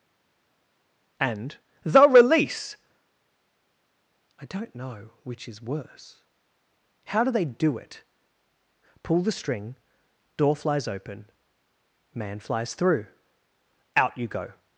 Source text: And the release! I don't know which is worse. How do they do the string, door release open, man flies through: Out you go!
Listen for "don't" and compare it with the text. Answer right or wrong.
right